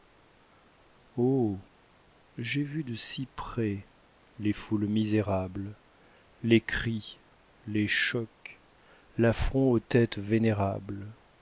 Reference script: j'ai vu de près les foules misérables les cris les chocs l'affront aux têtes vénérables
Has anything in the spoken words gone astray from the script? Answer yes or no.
yes